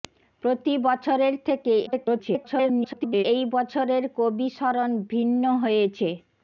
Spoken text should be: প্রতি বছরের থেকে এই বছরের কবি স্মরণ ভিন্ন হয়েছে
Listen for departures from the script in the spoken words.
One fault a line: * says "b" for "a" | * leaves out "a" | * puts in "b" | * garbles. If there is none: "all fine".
* garbles